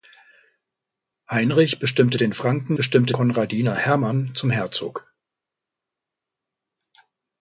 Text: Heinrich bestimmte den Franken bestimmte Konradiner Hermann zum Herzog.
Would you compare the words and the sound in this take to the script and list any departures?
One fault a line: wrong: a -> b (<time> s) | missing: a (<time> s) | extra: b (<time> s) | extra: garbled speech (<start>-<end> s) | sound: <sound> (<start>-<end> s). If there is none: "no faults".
no faults